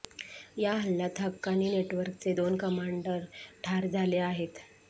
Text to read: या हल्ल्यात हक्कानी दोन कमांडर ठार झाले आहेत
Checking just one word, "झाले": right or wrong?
right